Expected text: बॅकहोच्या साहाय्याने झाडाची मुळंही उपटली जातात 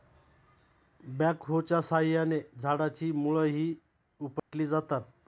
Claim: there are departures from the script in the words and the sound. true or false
true